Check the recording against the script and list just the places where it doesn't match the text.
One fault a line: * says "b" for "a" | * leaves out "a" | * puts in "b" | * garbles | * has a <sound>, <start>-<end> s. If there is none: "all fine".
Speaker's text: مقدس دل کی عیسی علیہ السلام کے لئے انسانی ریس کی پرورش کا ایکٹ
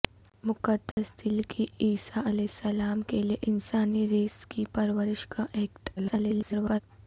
* has a dropout, 0.9-1.0 s
* garbles